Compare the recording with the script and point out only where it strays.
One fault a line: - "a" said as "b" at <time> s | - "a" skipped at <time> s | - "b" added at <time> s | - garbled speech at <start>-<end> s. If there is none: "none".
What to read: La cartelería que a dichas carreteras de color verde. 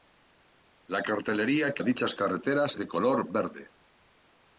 none